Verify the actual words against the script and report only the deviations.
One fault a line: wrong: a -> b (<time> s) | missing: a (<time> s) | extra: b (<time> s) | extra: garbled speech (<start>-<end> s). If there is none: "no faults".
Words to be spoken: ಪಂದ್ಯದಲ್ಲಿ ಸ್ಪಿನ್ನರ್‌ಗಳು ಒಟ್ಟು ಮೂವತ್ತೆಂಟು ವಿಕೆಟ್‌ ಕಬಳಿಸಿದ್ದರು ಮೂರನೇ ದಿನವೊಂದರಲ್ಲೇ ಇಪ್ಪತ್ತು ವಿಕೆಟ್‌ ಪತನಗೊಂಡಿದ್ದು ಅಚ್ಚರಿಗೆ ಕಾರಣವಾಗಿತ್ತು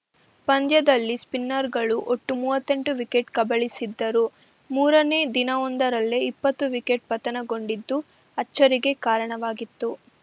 no faults